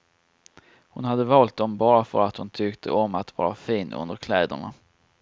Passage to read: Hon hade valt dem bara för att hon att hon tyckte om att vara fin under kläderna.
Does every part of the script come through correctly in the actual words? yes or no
no